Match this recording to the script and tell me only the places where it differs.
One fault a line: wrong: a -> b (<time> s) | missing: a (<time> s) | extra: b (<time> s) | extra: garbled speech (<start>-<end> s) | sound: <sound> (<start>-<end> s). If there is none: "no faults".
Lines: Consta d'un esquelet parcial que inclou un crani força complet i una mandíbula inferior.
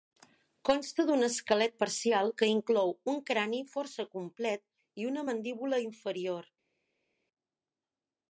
no faults